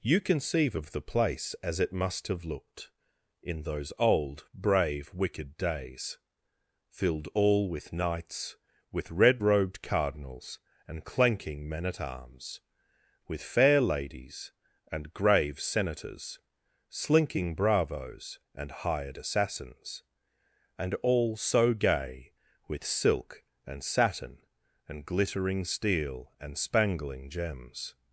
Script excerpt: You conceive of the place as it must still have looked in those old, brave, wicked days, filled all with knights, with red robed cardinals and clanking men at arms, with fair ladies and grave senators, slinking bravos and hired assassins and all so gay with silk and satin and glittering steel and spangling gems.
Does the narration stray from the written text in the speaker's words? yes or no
yes